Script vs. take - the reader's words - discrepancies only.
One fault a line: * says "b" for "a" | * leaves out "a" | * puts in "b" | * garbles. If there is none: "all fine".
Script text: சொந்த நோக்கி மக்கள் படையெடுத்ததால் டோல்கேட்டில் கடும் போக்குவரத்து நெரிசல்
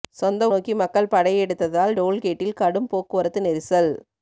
all fine